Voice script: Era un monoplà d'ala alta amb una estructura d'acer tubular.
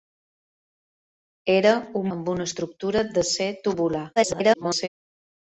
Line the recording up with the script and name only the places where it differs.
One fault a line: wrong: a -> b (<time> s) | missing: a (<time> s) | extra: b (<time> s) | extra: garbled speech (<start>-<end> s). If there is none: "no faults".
missing: monoplà d'ala alta (2.1 s)
extra: garbled speech (4.2-4.9 s)